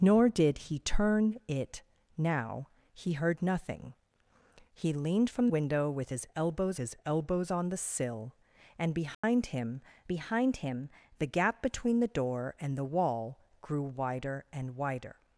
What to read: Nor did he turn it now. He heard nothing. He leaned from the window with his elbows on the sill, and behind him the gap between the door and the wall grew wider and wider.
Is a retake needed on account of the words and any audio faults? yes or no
yes